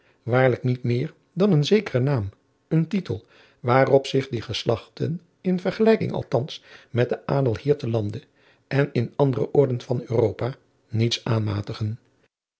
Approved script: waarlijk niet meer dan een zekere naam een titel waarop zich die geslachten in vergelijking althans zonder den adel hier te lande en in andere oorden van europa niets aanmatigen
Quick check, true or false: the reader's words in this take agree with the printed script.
false